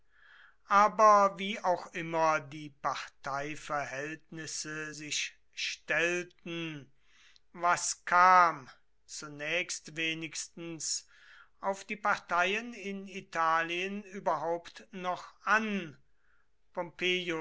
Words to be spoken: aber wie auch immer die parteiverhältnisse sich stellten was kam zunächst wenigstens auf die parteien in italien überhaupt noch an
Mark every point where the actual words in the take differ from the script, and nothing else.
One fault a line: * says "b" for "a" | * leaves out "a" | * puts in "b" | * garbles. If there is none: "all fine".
all fine